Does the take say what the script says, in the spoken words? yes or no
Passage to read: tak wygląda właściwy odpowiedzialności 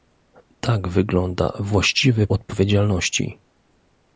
yes